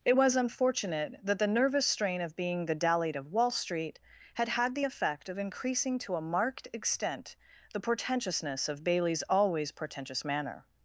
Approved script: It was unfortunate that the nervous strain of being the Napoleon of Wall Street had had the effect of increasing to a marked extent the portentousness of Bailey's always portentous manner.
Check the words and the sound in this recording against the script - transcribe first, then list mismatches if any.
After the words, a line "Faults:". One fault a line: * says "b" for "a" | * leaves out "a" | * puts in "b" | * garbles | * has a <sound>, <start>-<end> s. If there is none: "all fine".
It was unfortunate that the nervous strain of being the Dallied of Wall Street had had the effect of increasing to a marked extent the portentousness of Bailey's always portentous manner.
Faults:
* says "Dallied" for "Napoleon"